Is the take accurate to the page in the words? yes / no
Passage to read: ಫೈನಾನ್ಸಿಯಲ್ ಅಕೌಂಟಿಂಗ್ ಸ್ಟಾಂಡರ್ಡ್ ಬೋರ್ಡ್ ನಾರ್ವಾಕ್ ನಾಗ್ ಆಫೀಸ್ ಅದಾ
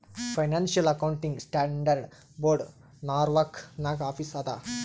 yes